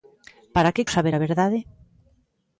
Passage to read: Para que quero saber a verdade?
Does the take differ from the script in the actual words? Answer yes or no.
yes